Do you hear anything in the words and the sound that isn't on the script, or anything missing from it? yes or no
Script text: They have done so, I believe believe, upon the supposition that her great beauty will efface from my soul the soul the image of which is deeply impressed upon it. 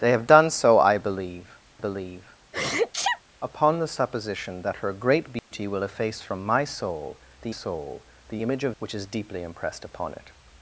yes